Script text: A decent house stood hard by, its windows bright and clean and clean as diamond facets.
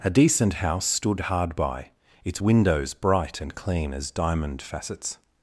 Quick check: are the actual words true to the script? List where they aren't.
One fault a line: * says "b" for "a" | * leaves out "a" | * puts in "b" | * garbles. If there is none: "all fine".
* leaves out "and clean"